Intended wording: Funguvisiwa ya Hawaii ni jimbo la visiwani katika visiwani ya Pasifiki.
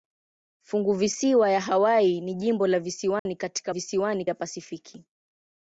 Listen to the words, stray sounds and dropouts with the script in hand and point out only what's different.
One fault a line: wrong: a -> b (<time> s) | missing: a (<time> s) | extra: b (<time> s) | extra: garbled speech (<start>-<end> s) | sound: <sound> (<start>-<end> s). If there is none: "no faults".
sound: dropout (3.2-3.3 s)